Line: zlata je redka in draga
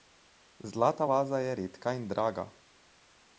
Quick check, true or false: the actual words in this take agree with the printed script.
false